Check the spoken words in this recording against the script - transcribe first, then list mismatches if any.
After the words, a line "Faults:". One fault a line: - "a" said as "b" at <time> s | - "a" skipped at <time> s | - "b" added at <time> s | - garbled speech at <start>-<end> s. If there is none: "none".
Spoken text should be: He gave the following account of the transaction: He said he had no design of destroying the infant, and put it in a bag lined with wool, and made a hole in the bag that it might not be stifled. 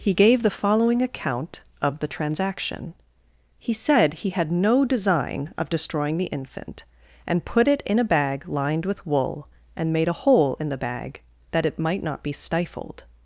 He gave the following account of the transaction: He said he had no design of destroying the infant, and put it in a bag lined with wool, and made a hole in the bag that it might not be stifled.
Faults:
none